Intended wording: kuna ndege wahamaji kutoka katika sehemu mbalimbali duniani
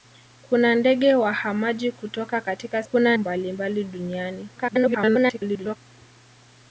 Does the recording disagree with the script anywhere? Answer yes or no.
yes